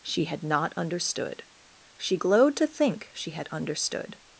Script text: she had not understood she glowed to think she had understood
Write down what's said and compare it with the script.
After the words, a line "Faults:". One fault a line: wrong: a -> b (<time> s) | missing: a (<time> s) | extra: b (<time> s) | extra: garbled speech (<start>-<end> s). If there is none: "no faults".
she had not understood she glowed to think she had understood
Faults:
no faults